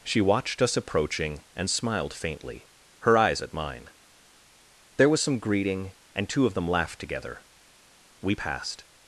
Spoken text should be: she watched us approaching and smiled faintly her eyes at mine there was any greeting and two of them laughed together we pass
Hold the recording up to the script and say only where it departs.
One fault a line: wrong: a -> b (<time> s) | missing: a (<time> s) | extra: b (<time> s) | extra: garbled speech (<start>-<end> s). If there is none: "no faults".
wrong: any -> some (5.2 s)
wrong: pass -> passed (8.3 s)